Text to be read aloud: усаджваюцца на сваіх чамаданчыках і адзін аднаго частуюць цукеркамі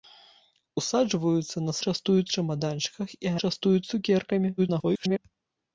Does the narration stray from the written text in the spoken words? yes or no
yes